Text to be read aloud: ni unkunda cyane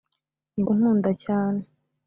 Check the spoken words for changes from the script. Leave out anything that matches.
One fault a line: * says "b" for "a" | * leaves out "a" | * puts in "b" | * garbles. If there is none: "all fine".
all fine